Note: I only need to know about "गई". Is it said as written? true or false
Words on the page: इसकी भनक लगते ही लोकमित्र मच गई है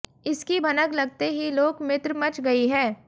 true